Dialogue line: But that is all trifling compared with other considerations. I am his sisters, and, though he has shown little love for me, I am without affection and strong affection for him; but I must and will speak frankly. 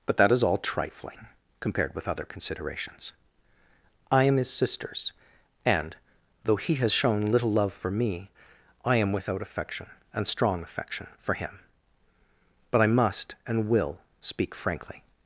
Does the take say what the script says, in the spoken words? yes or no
yes